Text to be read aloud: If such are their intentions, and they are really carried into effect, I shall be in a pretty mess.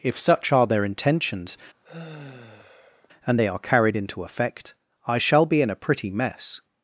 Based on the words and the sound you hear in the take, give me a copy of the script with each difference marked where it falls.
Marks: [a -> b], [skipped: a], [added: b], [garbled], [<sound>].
If such are their intentions, [sigh] and they are [skipped: really] carried into effect, I shall be in a pretty mess.